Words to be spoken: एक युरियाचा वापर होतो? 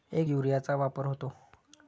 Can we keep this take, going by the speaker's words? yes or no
yes